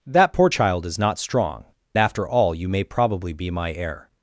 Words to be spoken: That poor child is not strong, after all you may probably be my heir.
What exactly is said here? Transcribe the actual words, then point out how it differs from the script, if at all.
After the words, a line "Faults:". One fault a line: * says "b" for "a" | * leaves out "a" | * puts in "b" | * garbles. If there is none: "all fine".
That poor child is not strong, after all you may probably be my heir.
Faults:
all fine